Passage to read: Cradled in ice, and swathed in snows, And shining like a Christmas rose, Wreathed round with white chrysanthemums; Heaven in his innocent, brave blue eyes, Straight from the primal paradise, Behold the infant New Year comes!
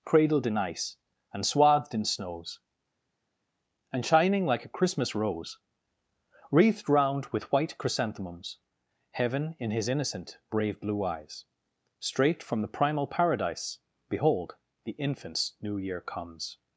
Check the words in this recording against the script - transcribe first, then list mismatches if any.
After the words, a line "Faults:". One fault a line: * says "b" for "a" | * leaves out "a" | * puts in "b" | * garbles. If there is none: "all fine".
Cradled in ice, and swathed in snows, And shining like a Christmas rose, Wreathed round with white chrysanthemums; Heaven in his innocent, brave blue eyes, Straight from the primal paradise, Behold the infants New Year comes!
Faults:
* says "infants" for "infant"